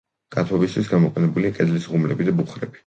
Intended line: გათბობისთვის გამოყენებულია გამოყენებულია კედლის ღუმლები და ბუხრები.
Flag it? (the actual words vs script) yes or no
yes